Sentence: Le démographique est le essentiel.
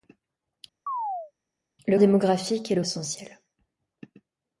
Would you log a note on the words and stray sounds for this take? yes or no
yes